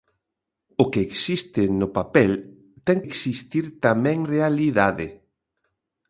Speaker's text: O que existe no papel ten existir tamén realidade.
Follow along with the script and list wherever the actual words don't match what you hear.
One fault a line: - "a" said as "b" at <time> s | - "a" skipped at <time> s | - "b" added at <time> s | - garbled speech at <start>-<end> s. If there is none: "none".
none